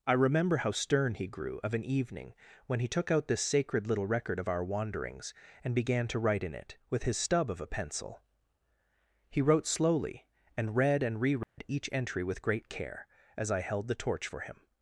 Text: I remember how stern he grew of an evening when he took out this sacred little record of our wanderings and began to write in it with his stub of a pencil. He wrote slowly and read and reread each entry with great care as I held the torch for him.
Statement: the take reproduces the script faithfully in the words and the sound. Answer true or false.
false